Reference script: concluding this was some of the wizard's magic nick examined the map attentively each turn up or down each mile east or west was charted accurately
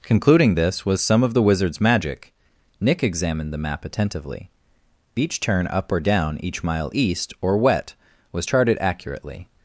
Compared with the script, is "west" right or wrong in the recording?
wrong